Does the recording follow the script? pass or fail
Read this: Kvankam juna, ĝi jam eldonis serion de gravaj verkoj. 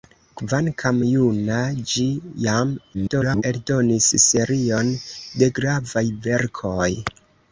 fail